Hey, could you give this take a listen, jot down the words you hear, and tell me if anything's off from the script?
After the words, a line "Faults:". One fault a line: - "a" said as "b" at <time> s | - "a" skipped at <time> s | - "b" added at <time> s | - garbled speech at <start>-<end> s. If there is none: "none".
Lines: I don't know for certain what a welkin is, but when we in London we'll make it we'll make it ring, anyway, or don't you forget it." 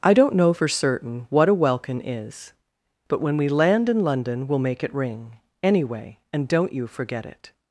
I don't know for certain what a welkin is, but when we land in London we'll make it ring, anyway, and don't you forget it."
Faults:
- "land" added at 3.5 s
- "we'll make it" skipped at 4.9 s
- "or" said as "and" at 6.3 s